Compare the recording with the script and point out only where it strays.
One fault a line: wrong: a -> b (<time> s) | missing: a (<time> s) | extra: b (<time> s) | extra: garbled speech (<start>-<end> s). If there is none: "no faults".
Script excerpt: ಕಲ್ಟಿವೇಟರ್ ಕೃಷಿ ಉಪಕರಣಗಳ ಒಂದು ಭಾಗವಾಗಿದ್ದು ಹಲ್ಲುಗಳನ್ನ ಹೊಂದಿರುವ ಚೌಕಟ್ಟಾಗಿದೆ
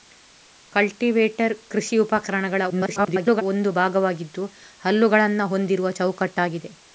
extra: garbled speech (2.7-3.4 s)